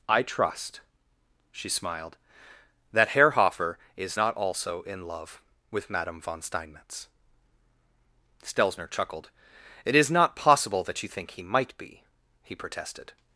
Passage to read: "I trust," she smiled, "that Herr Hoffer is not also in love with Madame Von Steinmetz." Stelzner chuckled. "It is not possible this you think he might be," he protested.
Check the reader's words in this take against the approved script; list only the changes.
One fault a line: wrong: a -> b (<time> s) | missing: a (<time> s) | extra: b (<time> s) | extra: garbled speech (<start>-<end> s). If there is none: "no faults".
wrong: this -> that (10.8 s)